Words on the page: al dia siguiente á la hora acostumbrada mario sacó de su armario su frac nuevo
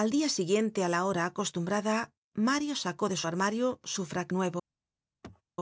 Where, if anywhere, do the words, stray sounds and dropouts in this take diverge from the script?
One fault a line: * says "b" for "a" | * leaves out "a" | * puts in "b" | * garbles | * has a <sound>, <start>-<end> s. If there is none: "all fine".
* has a throat clearing, 5.2-5.4 s